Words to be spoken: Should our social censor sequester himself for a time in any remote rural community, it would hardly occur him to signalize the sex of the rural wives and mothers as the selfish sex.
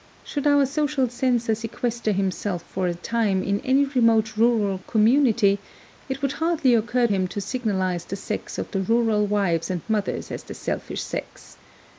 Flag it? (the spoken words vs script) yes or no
no